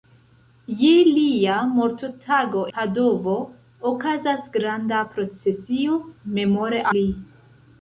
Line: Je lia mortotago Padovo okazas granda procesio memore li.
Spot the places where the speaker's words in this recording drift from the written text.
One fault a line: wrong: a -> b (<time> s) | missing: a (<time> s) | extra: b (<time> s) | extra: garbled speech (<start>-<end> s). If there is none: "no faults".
no faults